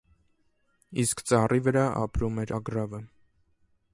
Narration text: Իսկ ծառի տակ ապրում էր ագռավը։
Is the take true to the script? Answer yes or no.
no